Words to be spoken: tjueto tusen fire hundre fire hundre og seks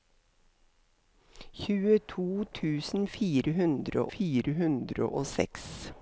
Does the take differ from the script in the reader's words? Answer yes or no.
no